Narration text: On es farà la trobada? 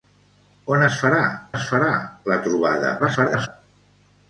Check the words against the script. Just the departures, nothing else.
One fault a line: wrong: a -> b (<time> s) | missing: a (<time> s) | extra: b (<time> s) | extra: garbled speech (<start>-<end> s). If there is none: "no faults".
extra: es farà (1.5 s)
extra: garbled speech (3.0-3.5 s)